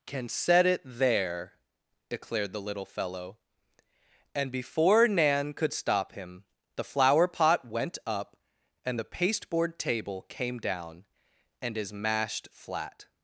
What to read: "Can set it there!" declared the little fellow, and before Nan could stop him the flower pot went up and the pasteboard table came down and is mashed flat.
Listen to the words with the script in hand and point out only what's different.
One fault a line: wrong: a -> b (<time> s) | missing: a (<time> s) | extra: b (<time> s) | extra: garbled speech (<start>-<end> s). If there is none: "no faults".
no faults